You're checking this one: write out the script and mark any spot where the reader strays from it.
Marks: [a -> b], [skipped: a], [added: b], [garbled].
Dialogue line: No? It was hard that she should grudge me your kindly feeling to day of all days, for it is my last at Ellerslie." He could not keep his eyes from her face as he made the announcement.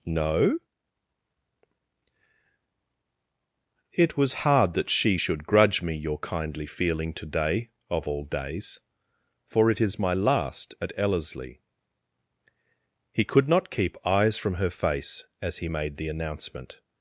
No? It was hard that she should grudge me your kindly feeling to day of all days, for it is my last at Ellerslie." He could not keep [skipped: his] eyes from her face as he made the announcement.